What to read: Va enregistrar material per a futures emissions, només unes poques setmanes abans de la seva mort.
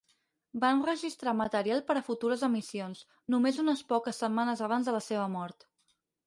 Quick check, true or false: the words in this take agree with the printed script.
true